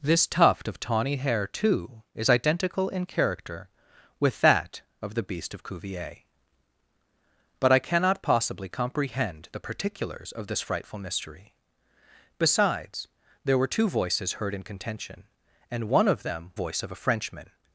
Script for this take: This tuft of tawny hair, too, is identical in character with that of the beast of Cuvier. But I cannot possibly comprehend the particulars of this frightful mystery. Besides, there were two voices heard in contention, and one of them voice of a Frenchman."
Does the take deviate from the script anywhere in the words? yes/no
no